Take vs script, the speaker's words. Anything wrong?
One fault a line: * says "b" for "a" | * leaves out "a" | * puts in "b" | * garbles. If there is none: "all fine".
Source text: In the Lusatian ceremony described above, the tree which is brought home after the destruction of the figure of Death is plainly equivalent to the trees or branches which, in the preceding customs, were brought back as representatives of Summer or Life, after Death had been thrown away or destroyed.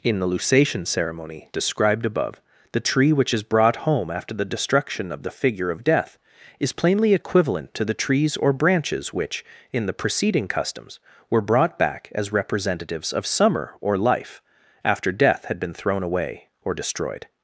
all fine